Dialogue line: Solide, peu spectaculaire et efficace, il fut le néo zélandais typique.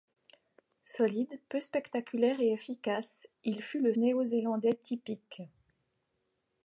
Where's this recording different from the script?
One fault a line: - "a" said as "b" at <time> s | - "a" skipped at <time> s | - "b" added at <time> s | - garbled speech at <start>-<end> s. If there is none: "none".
none